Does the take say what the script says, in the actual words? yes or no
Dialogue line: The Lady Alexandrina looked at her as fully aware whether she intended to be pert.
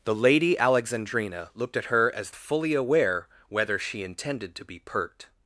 yes